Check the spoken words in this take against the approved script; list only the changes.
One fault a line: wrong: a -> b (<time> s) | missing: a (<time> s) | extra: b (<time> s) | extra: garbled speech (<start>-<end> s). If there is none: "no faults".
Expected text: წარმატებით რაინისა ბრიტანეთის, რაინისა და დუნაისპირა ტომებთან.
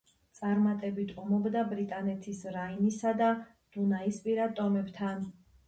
wrong: რაინისა -> ომობდა (1.2 s)